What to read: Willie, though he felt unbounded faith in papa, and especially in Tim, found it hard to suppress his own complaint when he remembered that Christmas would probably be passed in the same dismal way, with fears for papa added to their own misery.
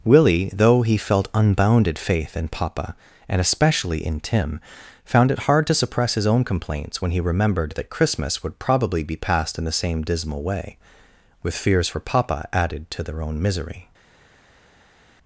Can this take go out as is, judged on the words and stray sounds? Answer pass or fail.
fail